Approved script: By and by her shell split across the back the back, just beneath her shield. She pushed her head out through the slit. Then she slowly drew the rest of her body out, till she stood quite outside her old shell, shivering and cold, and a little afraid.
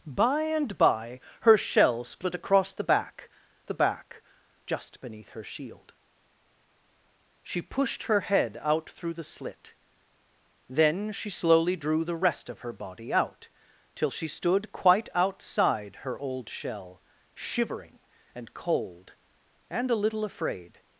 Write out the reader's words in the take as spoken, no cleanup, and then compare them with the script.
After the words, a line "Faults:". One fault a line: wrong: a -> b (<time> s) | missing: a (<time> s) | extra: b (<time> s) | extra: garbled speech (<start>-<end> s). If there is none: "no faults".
By and by her shell split across the back the back, just beneath her shield. She pushed her head out through the slit. Then she slowly drew the rest of her body out, till she stood quite outside her old shell, shivering and cold, and a little afraid.
Faults:
no faults